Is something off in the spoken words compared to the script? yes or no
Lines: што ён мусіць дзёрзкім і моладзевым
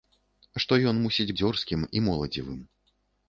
no